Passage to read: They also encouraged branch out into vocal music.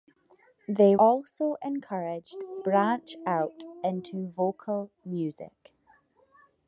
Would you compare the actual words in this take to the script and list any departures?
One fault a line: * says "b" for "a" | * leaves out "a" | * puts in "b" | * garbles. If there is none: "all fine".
all fine